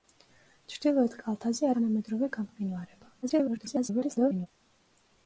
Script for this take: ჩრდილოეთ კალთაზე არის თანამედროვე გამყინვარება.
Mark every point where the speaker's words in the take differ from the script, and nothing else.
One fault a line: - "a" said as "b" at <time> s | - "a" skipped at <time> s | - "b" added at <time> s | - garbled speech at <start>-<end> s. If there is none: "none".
- "არის" skipped at 1.7 s
- garbled speech at 3.2-4.5 s